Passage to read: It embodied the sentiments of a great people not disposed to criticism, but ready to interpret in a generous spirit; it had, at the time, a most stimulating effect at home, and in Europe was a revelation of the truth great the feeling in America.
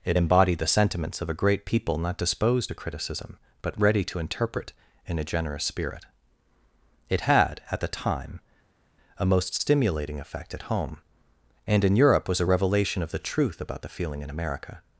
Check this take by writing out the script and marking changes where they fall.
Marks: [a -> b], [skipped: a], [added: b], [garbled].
It embodied the sentiments of a great people not disposed to criticism, but ready to interpret in a generous spirit; it had, at the time, a most stimulating effect at home, and in Europe was a revelation of the truth [great -> about] the feeling in America.